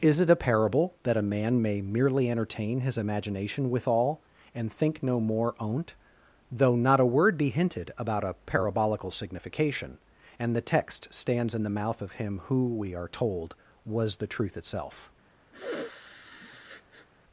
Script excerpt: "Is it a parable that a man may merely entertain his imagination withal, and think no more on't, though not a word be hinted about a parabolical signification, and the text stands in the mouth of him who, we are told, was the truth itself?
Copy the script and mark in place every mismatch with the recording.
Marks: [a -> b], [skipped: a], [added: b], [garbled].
"Is it a parable that a man may merely entertain his imagination withal, and think no more on't, though not a word be hinted about a parabolical signification, and the text stands in the mouth of him who, we are told, was the truth itself?